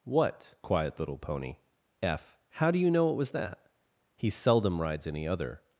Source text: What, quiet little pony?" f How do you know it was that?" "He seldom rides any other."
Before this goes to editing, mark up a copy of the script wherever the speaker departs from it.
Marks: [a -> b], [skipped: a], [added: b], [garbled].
What, quiet little pony?" f How do you know it was that?" "He seldom rides any other."